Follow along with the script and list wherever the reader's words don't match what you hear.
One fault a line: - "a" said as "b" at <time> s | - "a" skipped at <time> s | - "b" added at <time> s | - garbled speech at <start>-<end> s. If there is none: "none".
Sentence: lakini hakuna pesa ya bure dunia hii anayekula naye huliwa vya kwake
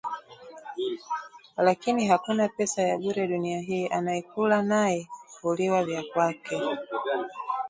none